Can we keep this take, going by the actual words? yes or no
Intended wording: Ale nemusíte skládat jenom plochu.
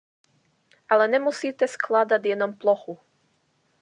yes